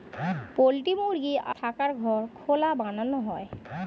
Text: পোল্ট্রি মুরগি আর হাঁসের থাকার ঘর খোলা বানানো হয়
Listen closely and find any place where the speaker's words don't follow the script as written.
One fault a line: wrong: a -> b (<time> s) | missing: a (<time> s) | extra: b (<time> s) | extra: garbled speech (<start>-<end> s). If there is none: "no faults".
missing: আর হাঁসের (1.4 s)